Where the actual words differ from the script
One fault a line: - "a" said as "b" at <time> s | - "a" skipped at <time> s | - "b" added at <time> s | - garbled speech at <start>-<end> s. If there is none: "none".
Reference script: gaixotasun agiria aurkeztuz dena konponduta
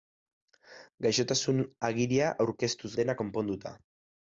none